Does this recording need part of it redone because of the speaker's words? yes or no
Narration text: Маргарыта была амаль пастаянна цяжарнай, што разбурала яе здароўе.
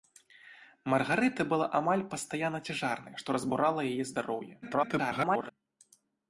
yes